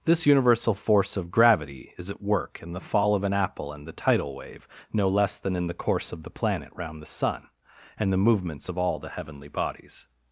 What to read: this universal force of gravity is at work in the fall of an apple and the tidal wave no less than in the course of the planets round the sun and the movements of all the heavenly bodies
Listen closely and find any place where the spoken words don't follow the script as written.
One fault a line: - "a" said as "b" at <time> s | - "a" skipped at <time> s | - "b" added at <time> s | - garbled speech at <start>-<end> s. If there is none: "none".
- "planets" said as "planet" at 6.3 s